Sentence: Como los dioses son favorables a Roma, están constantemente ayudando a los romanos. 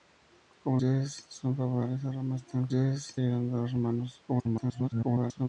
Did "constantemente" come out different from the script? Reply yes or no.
yes